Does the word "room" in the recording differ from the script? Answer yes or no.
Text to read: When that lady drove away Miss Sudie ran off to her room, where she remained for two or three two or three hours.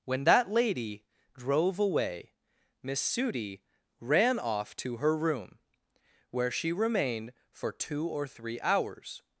no